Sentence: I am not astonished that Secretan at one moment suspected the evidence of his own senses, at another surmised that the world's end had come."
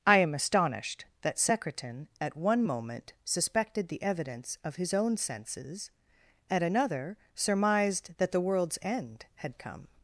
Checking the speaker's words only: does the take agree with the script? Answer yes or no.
no